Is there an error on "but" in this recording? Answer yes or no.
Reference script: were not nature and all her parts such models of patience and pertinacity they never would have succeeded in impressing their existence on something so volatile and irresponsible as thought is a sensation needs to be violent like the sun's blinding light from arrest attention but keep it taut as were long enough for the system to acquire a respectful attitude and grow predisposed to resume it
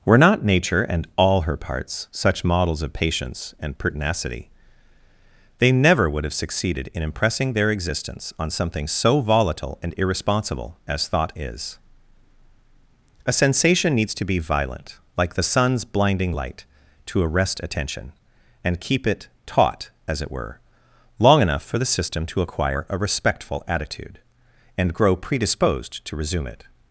yes